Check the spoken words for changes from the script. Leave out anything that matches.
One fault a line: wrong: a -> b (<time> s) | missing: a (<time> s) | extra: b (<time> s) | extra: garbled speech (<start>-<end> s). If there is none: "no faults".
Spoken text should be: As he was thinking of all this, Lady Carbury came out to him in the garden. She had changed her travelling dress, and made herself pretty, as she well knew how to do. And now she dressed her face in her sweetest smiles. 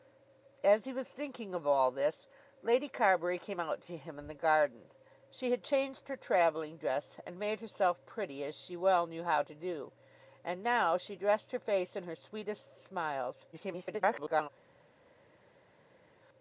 extra: garbled speech (13.5-14.5 s)